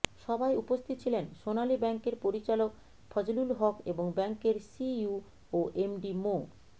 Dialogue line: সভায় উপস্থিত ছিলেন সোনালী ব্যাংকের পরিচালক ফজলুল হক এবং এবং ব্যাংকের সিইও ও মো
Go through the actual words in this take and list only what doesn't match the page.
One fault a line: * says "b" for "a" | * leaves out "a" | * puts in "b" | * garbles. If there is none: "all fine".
* leaves out "এবং"
* puts in "এমডি"